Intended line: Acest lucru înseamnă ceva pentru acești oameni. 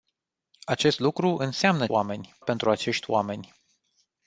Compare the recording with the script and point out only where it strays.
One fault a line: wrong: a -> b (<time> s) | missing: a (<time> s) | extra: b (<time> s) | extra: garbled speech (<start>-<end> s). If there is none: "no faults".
wrong: ceva -> oameni (1.9 s)